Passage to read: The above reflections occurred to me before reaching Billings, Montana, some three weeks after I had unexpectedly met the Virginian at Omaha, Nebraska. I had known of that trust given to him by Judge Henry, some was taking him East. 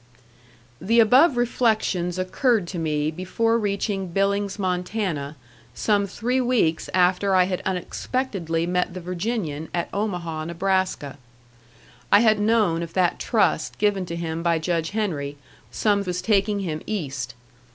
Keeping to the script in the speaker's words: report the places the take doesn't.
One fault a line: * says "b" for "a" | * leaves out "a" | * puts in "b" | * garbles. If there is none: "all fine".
all fine